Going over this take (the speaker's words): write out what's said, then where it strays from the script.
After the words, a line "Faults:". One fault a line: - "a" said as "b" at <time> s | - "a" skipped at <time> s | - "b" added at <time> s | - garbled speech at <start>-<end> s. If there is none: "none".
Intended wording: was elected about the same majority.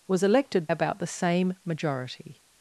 was elected about the same majority.
Faults:
none